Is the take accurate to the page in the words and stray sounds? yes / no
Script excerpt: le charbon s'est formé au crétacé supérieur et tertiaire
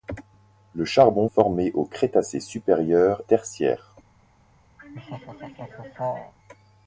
no